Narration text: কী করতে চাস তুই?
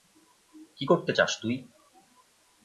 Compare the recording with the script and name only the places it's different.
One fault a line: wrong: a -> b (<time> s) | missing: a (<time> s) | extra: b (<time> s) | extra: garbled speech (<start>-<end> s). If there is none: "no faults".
no faults